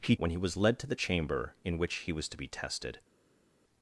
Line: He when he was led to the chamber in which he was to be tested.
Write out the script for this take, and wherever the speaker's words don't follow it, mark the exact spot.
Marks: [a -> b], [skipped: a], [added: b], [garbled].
He when he was led to the chamber in which he was to be tested.